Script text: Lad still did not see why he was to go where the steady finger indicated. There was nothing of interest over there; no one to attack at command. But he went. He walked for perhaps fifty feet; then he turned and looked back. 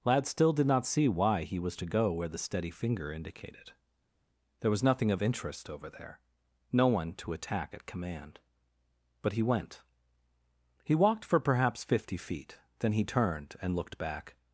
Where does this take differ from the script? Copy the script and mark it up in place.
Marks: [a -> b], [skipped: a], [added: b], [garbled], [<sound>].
Lad still did not see why he was to go where the steady finger indicated. There was nothing of interest over there; no one to attack at command. But he went. He walked for perhaps fifty feet; then he turned and looked back.